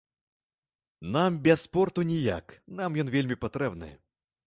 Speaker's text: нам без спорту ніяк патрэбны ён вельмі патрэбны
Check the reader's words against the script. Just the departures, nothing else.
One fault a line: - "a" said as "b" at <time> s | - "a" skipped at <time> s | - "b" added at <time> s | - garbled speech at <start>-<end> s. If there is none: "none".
- "патрэбны" said as "нам" at 2.7 s